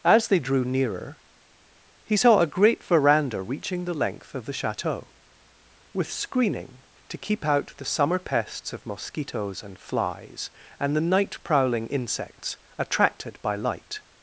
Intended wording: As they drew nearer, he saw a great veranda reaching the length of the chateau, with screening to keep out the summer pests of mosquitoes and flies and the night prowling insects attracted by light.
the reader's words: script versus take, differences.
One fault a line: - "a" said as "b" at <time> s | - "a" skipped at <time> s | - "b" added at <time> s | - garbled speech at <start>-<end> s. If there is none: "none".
none